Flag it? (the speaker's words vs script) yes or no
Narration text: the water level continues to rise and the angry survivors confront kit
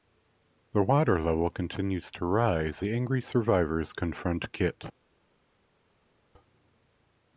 yes